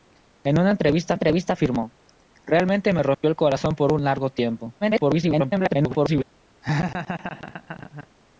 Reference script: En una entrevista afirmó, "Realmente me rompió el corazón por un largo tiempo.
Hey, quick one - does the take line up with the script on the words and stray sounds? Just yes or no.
no